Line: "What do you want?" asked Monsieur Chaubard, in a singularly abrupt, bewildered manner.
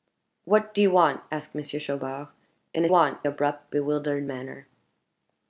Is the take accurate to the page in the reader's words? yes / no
no